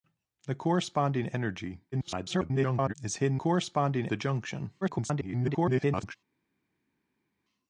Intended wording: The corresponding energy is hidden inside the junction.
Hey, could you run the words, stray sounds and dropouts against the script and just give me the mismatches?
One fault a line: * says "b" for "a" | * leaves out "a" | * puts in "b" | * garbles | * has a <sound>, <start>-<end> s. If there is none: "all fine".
* garbles
* says "corresponding" for "inside"
* garbles